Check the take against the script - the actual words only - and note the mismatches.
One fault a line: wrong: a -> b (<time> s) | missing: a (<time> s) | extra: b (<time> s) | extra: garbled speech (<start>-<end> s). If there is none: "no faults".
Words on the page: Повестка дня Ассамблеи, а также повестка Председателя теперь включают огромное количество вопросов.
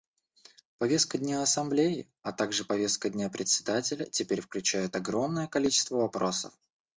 extra: дня (3.1 s)